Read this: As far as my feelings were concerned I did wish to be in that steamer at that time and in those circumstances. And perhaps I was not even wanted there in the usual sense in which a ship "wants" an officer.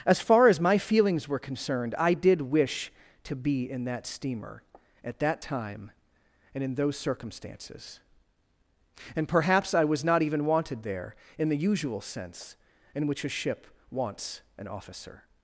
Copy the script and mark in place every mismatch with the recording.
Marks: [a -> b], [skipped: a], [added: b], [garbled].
As far as my feelings were concerned I did wish to be in that steamer at that time and in those circumstances. And perhaps I was not even wanted there in the usual sense in which a ship "wants" an officer.